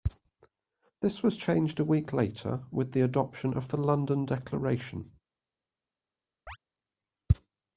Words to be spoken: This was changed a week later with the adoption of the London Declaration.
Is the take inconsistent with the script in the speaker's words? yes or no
no